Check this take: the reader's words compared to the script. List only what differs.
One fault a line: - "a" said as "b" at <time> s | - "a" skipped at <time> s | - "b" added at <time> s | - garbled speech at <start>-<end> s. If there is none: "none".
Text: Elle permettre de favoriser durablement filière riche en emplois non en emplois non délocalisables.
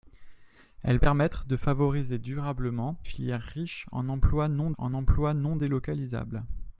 none